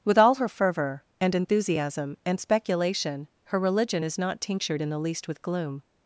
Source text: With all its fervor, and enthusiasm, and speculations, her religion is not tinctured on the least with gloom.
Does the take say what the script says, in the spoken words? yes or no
no